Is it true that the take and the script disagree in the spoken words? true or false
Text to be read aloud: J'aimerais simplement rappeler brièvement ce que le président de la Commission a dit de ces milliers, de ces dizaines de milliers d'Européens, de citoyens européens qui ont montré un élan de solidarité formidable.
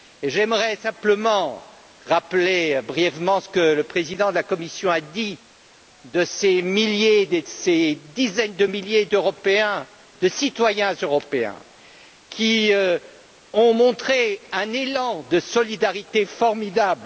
false